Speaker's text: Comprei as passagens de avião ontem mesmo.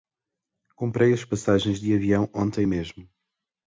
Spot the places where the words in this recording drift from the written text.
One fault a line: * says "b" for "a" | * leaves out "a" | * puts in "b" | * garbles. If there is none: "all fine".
all fine